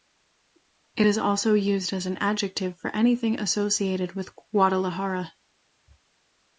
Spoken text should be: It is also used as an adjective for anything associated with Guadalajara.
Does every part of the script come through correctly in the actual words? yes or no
yes